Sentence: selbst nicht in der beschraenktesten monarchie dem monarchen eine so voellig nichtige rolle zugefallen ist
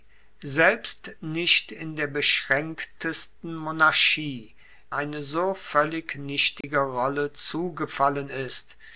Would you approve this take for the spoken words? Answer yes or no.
no